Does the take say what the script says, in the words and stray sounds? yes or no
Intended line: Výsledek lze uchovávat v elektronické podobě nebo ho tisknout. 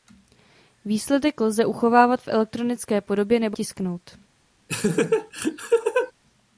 no